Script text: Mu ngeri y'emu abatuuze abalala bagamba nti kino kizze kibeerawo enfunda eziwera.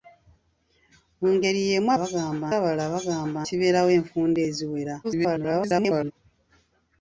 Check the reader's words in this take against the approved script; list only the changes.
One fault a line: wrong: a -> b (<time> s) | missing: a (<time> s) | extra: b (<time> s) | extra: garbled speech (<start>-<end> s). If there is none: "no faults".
wrong: abatuuze -> bagamba (2.0 s)
missing: nti kino kizze (3.4 s)
extra: garbled speech (5.0-6.1 s)